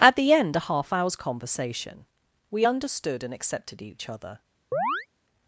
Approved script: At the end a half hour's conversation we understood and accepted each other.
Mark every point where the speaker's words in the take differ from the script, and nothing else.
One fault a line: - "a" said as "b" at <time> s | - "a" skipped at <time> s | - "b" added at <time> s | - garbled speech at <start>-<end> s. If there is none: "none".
none